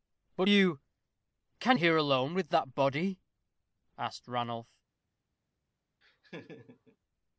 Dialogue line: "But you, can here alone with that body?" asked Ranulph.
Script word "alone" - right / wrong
right